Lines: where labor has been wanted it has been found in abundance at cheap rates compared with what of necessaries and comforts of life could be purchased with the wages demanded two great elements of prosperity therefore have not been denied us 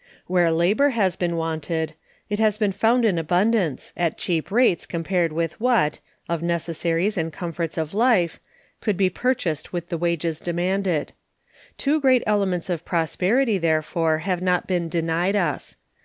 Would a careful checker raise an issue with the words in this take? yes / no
no